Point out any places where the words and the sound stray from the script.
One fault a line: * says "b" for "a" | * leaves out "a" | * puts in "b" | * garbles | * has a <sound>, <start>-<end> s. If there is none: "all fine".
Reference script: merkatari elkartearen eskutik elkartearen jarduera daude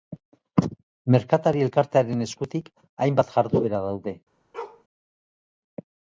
* says "hainbat" for "elkartearen"
* has a bark, 4.5-4.8 s